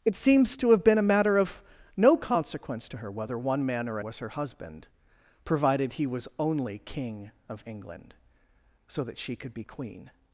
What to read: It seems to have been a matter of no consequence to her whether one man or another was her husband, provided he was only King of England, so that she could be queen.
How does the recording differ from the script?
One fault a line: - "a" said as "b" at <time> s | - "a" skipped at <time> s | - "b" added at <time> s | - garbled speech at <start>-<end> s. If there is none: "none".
- "another" skipped at 4.0 s